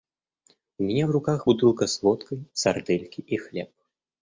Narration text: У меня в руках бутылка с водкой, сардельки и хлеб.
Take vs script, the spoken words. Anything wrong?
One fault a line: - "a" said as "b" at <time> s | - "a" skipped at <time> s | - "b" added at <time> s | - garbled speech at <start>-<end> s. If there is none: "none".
none